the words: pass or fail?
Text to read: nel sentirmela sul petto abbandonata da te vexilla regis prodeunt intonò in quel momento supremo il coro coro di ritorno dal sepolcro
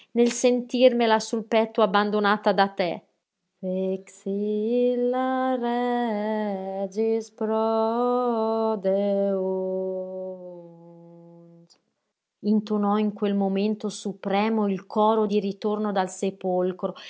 fail